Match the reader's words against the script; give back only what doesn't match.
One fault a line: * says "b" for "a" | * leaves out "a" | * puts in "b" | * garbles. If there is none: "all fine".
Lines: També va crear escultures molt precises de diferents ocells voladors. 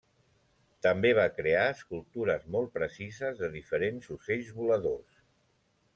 all fine